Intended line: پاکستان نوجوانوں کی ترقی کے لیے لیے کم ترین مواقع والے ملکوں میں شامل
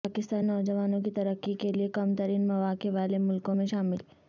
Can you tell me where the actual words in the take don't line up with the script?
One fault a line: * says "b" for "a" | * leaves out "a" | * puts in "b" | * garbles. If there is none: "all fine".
* leaves out "لیے"